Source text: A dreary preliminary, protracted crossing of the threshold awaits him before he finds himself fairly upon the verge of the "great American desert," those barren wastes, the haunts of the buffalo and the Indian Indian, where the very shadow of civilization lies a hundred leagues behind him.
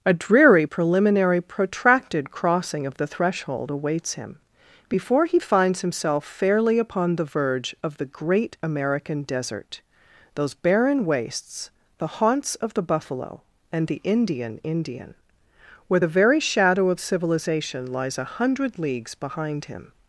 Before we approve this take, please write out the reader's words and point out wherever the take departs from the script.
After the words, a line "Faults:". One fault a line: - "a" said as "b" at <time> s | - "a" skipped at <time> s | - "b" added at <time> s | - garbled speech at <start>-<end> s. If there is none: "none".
A dreary preliminary, protracted crossing of the threshold awaits him before he finds himself fairly upon the verge of the "great American desert," those barren wastes, the haunts of the buffalo and the Indian Indian, where the very shadow of civilization lies a hundred leagues behind him.
Faults:
none